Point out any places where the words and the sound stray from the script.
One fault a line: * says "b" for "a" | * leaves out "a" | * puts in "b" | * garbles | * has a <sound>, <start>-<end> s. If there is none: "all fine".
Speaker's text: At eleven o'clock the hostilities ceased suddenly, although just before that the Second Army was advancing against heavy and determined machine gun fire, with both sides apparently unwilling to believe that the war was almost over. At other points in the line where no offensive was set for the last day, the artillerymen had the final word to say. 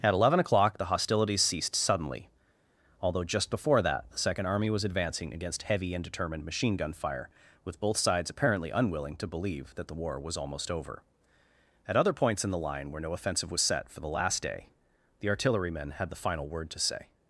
all fine